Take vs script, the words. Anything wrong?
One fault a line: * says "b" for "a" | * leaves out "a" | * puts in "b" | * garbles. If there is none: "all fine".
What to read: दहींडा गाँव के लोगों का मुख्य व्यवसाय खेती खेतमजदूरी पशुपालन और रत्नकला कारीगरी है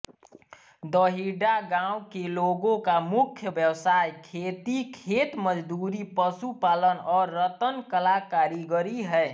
all fine